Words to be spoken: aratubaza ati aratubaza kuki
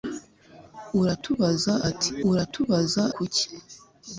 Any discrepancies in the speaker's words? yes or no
no